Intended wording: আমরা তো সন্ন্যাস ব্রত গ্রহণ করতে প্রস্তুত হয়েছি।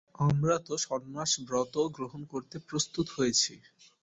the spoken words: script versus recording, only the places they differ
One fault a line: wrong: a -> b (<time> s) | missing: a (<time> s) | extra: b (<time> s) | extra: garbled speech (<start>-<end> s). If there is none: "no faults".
no faults